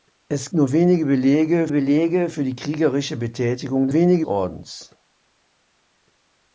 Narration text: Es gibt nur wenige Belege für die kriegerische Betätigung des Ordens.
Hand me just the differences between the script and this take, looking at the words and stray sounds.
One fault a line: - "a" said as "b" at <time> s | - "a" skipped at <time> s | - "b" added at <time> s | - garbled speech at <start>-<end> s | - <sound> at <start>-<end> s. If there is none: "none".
- "gibt" skipped at 0.5 s
- "Belege" added at 1.7 s
- "des" said as "wenige" at 3.9 s